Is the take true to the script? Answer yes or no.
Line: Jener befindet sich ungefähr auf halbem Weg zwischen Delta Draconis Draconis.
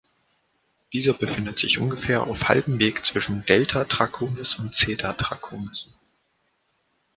no